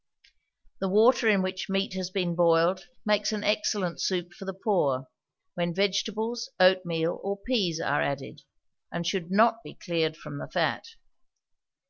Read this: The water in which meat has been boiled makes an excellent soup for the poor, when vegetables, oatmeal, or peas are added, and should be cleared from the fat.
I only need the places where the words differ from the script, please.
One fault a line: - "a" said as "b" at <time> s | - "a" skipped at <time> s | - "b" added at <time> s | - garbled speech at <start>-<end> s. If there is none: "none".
- "not" added at 9.3 s